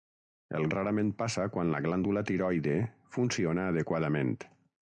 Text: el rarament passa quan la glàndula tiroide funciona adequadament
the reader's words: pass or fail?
pass